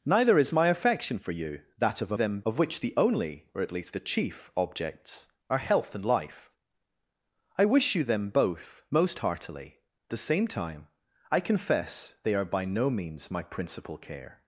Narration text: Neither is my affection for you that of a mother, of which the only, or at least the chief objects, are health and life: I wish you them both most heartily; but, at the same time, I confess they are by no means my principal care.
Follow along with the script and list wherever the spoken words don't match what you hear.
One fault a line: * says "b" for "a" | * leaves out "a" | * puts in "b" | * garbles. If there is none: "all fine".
* says "them" for "mother"
* leaves out "but at"